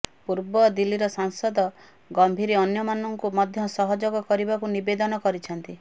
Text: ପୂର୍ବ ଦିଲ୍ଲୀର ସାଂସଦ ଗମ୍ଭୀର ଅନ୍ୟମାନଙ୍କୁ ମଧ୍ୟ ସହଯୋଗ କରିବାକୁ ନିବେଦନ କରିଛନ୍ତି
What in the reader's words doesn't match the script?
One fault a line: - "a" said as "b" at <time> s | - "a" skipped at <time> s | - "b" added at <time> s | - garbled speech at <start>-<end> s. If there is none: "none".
none